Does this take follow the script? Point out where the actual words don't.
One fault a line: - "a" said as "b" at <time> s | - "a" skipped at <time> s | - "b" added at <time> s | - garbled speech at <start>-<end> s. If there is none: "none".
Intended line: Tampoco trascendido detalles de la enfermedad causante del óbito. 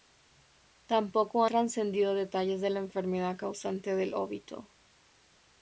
none